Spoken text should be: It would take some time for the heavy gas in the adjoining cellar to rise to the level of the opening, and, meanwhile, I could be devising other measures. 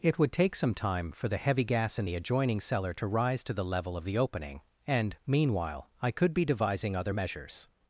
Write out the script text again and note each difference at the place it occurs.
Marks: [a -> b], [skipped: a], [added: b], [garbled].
It would take some time for the heavy gas in the adjoining cellar to rise to the level of the opening, and, meanwhile, I could be devising other measures.